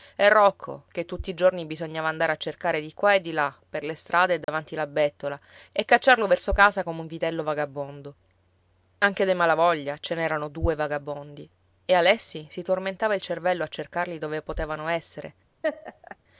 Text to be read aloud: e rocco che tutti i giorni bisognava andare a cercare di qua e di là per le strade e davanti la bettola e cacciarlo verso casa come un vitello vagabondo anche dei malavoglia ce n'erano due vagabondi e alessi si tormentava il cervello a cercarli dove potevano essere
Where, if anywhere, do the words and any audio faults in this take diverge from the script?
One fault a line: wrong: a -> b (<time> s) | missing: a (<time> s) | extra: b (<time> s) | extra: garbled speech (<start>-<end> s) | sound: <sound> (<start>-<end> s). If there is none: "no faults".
sound: dropout (4.4-4.5 s)
sound: laugh (15.6-16.2 s)